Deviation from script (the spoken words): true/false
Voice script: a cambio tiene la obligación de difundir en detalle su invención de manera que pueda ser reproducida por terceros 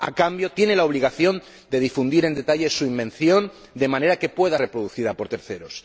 true